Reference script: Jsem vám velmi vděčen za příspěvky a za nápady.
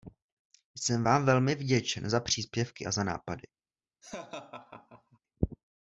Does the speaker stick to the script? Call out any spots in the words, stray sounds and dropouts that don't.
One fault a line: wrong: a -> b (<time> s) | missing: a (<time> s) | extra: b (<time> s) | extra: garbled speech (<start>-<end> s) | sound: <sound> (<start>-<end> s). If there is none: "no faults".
sound: laugh (4.0-5.2 s)